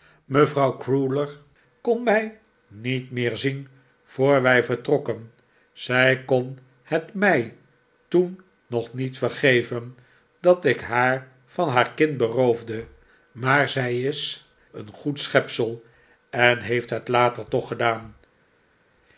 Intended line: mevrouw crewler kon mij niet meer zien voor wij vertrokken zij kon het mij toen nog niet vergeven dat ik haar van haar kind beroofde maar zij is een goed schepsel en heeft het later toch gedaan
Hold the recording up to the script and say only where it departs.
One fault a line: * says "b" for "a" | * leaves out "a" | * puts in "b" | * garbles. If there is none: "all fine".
all fine